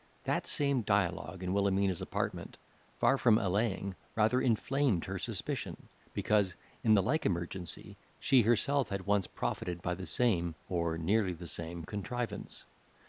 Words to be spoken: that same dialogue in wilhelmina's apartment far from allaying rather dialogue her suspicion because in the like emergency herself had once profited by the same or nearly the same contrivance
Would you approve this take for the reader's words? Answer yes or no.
no